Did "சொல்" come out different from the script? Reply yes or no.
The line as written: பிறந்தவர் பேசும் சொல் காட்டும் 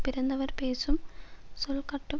no